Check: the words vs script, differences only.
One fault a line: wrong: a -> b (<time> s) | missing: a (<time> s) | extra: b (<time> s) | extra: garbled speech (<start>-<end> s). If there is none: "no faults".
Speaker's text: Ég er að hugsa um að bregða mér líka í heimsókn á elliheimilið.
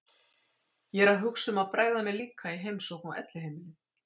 no faults